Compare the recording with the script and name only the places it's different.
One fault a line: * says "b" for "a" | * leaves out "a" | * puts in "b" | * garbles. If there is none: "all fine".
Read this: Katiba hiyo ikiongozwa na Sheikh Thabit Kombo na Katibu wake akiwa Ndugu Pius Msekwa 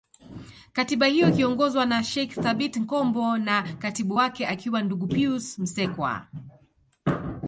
all fine